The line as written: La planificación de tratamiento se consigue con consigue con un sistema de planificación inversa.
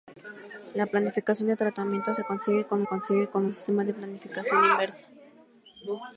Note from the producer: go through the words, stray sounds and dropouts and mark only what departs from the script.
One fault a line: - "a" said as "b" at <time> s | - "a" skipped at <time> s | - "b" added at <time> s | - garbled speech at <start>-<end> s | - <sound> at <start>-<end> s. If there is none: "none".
none